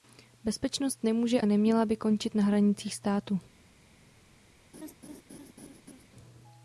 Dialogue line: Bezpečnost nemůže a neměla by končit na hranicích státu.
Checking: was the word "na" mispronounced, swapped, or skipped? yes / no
no